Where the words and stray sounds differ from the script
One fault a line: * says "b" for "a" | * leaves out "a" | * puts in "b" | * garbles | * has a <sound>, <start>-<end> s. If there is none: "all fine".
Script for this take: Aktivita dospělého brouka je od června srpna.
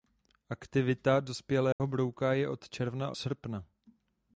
* has a dropout, 1.7-1.8 s